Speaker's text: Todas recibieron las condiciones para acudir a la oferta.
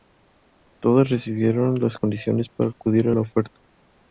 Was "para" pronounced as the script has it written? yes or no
yes